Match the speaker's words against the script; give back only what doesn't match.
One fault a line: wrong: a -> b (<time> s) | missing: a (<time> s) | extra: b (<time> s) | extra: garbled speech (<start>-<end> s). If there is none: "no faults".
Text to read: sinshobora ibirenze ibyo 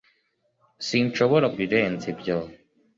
no faults